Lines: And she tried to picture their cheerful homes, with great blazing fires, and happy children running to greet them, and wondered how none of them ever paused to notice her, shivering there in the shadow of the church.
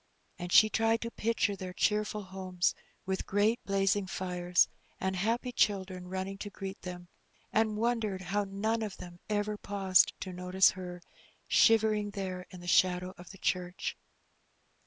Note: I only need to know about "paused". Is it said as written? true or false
true